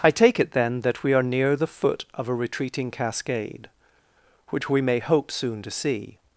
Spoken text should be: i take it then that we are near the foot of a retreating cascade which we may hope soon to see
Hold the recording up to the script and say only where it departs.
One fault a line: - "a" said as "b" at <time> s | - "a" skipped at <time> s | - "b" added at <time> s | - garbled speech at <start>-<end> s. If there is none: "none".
none